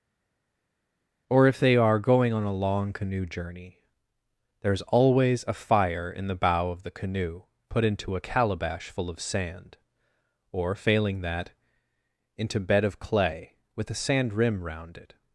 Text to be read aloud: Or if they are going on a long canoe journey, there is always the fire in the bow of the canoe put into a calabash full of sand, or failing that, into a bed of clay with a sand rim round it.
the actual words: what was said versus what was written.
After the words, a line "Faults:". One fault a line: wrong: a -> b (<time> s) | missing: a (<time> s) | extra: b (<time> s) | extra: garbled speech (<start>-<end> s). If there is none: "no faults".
Or if they are going on a long canoe journey, there is always a fire in the bow of the canoe put into a calabash full of sand, or failing that, into bed of clay with a sand rim round it.
Faults:
wrong: the -> a (5.5 s)
missing: a (12.6 s)